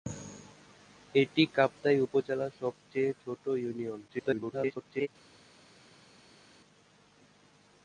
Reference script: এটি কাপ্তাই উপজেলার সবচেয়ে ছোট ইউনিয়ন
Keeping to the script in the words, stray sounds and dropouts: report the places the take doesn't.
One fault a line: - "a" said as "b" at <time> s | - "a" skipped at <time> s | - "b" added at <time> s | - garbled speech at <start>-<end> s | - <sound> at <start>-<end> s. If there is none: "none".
- garbled speech at 4.1-5.1 s